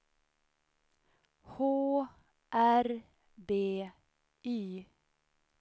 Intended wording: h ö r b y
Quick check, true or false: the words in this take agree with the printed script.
false